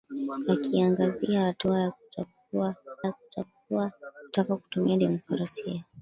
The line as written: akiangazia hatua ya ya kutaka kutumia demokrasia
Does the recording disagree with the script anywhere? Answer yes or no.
no